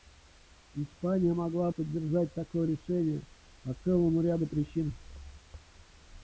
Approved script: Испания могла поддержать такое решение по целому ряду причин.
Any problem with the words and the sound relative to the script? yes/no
no